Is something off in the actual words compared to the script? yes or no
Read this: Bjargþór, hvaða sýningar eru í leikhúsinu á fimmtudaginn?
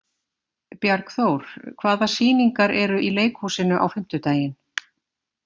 no